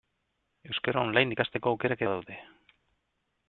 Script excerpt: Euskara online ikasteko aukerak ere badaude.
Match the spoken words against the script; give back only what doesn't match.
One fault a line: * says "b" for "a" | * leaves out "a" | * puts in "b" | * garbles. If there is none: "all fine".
* leaves out "ere"